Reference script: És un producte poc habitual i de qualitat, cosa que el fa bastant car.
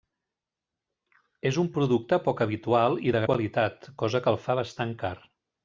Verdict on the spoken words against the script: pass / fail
pass